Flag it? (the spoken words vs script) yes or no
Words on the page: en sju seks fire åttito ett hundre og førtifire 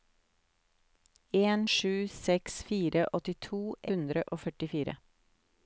yes